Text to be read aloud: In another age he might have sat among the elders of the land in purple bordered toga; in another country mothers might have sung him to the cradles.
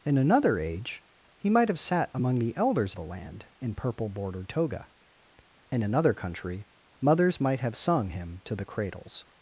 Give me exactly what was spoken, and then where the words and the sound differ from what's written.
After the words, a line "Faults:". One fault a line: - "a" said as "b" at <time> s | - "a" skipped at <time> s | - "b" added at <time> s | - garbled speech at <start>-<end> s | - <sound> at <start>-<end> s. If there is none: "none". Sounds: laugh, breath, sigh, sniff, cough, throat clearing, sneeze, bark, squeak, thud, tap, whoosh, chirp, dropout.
In another age he might have sat among the elders the land in purple bordered toga; in another country mothers might have sung him to the cradles.
Faults:
- "of" skipped at 3.0 s